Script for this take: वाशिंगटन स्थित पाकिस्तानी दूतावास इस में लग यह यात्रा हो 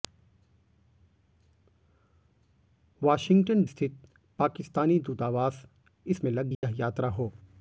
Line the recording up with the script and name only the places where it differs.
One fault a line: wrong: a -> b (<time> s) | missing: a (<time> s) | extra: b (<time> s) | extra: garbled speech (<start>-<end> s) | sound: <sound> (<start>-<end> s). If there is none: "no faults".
sound: dropout (6.5-6.6 s)